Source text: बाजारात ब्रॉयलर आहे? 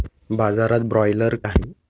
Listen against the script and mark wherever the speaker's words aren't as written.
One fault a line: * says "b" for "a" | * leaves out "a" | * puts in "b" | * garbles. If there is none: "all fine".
all fine